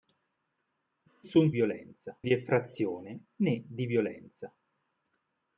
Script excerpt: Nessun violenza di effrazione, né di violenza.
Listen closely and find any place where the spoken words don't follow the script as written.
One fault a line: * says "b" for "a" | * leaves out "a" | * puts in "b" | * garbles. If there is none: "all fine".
all fine